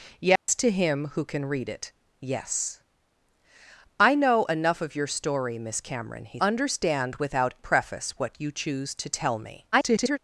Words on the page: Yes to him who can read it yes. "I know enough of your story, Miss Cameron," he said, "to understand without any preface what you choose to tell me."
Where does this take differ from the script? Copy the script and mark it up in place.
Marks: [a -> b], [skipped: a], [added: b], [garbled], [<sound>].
Yes [dropout] to him who can read it yes. "I know enough of your story, Miss Cameron," he [skipped: said, "to] understand without [skipped: any] preface what you choose to tell me." [garbled]